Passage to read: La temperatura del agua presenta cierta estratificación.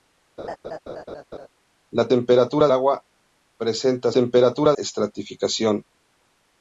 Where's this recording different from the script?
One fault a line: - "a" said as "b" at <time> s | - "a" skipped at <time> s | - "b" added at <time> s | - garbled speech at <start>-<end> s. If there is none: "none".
- "del" skipped at 2.7 s
- "cierta" said as "temperatura" at 4.1 s